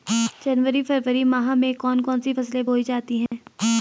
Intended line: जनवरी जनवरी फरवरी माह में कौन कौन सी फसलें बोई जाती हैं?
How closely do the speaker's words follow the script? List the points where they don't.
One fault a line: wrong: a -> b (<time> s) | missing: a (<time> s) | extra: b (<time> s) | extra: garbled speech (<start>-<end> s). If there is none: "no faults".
missing: जनवरी (0.8 s)